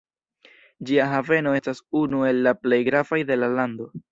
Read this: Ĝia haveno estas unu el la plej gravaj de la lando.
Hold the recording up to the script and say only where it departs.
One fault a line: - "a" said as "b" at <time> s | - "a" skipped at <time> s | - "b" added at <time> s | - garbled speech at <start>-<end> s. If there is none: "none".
none